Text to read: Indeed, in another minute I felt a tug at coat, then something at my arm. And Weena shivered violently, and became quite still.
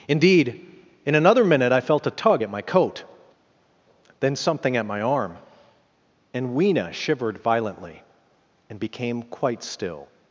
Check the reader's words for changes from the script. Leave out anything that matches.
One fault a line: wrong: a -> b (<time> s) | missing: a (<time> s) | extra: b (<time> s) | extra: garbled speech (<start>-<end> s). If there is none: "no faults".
extra: my (2.5 s)